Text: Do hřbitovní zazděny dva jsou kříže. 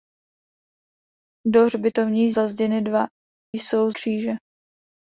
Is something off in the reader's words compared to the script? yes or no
no